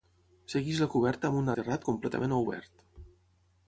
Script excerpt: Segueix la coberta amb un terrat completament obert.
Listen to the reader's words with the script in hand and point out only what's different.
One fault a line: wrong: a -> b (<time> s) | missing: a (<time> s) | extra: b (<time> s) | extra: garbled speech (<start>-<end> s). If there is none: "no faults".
no faults